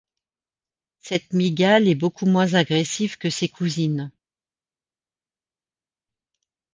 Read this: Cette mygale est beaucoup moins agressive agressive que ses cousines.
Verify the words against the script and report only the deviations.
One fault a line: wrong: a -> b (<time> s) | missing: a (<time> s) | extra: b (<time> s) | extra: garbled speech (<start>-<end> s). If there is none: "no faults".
missing: agressive (3.2 s)